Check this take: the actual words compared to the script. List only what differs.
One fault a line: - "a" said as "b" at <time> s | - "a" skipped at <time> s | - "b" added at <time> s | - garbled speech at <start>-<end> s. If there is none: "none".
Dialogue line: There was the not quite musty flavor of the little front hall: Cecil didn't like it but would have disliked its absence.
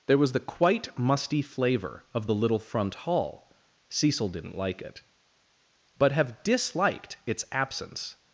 - "not" skipped at 0.4 s
- "would" skipped at 6.1 s